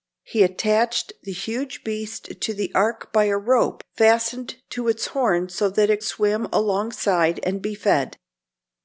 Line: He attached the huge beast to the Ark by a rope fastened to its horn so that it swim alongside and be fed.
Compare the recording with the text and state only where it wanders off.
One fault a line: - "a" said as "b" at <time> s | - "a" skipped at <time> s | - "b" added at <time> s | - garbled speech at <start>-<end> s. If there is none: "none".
none